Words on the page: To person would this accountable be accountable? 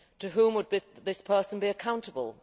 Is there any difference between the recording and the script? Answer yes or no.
yes